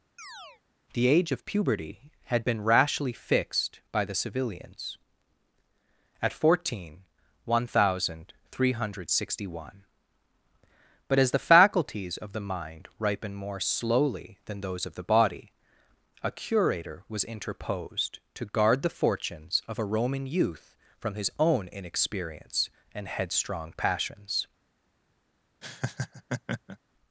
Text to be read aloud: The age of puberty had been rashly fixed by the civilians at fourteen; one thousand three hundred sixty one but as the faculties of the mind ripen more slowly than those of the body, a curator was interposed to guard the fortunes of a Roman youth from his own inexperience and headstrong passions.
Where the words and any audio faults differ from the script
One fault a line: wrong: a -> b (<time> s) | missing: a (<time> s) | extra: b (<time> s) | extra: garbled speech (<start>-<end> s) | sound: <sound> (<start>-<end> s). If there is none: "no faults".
sound: chirp (0.2-0.6 s)
sound: laugh (25.6-26.8 s)